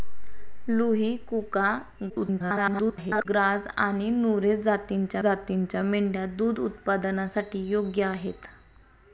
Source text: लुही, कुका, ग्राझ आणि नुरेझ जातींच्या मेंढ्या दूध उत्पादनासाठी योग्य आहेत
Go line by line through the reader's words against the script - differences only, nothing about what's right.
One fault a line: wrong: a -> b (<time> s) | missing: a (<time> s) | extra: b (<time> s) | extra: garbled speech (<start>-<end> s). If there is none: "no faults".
extra: garbled speech (2.1-3.3 s)
extra: जातींच्या (5.2 s)